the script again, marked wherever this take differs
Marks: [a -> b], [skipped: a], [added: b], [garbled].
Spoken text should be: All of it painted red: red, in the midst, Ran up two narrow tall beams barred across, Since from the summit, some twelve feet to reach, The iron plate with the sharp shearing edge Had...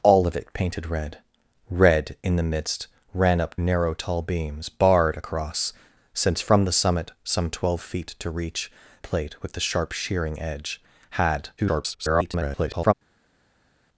All of it painted red: red, in the midst, Ran up [skipped: two] narrow tall beams barred across, Since from the summit, some twelve feet to reach, [skipped: The iron] plate with the sharp shearing edge Had... [garbled]